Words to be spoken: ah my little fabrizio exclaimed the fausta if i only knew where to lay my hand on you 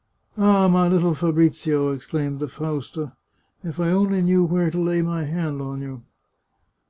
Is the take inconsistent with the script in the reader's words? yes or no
no